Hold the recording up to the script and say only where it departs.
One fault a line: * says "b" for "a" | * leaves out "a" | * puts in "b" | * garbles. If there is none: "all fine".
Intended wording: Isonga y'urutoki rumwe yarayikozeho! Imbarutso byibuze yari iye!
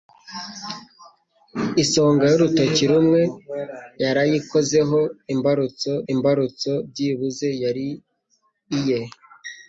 * puts in "imbarutso"